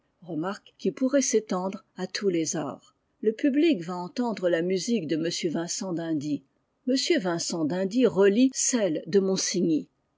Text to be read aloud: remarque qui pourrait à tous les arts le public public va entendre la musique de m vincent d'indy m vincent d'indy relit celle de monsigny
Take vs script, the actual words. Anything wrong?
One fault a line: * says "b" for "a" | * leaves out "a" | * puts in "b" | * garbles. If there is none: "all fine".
* puts in "s'étendre"
* leaves out "public"